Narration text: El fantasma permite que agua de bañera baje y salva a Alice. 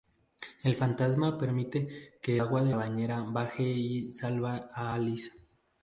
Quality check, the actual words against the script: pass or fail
pass